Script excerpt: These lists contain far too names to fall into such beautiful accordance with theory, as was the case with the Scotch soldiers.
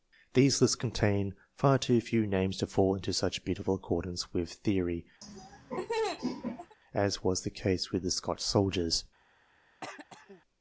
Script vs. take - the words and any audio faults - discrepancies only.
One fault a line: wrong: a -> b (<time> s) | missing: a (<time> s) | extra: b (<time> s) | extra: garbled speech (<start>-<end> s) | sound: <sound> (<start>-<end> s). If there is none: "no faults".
extra: few (2.0 s)
sound: laugh (5.2-6.8 s)
sound: throat clearing (9.8-10.4 s)